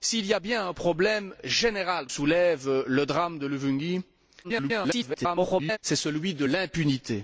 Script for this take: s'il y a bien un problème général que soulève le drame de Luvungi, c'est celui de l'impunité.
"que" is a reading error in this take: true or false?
true